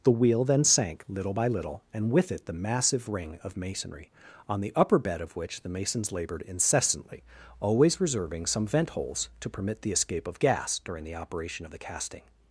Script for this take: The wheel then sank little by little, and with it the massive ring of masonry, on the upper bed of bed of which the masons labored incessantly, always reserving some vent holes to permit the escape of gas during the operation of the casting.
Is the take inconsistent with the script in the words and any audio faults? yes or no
yes